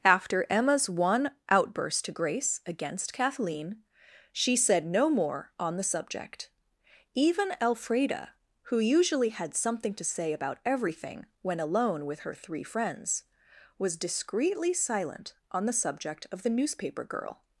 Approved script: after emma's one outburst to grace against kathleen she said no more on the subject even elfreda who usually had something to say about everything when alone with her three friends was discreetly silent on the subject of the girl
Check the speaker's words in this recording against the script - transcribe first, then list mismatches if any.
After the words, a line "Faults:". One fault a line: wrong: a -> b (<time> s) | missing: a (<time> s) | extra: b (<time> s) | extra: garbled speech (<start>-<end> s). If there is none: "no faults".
after emma's one outburst to grace against kathleen she said no more on the subject even elfreda who usually had something to say about everything when alone with her three friends was discreetly silent on the subject of the newspaper girl
Faults:
extra: newspaper (16.5 s)